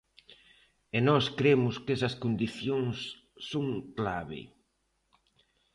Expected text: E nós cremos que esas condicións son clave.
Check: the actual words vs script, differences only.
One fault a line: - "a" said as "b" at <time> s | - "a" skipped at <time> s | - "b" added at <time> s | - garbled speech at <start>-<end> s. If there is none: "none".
none